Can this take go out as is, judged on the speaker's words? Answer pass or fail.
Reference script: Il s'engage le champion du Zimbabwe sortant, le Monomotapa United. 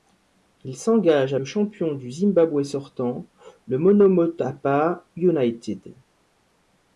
pass